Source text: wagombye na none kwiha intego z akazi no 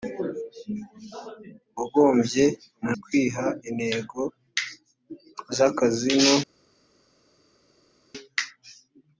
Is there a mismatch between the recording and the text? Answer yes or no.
yes